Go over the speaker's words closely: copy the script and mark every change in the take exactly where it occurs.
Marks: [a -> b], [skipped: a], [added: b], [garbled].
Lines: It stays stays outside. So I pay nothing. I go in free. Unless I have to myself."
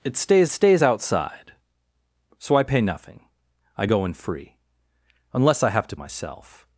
It stays stays outside. So I pay nothing. I go in free. Unless I have to myself."